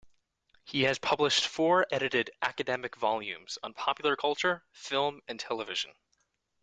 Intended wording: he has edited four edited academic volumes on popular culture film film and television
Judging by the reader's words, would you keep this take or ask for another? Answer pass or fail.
fail